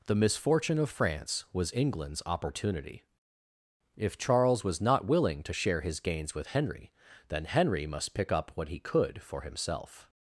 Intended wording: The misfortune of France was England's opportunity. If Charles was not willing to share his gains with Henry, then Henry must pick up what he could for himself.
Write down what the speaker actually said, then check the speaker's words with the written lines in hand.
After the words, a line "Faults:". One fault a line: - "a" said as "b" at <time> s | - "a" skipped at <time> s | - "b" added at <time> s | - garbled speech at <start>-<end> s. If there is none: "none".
The misfortune of France was England's opportunity. If Charles was not willing to share his gains with Henry, then Henry must pick up what he could for himself.
Faults:
none